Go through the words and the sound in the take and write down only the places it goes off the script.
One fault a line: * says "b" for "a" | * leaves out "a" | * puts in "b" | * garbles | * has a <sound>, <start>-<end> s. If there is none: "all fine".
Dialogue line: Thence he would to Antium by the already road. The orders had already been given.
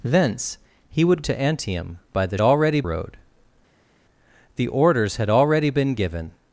all fine